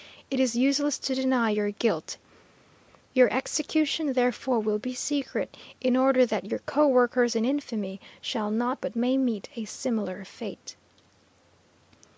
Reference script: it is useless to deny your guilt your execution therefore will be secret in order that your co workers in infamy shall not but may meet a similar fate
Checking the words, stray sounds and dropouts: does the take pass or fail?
pass